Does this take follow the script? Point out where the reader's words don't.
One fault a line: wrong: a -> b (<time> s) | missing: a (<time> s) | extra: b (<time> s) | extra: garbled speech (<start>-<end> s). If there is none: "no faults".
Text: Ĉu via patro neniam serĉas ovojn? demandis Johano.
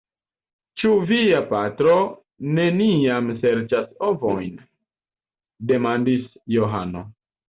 no faults